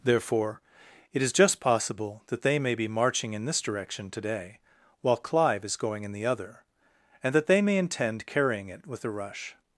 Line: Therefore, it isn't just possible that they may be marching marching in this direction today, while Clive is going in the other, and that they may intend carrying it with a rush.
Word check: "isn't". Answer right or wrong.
wrong